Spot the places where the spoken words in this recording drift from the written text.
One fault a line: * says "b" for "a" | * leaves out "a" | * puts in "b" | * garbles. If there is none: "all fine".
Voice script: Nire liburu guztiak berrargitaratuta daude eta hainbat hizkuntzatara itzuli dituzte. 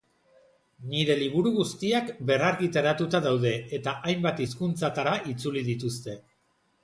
all fine